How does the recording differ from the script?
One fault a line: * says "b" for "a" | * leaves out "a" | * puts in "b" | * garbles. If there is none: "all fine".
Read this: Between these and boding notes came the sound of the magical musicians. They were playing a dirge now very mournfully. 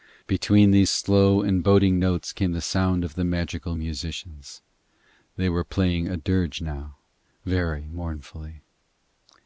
* puts in "slow"